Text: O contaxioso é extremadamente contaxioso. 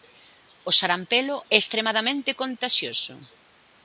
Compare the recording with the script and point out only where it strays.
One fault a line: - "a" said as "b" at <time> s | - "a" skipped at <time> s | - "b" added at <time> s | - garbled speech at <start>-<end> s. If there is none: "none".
- "contaxioso" said as "sarampelo" at 0.8 s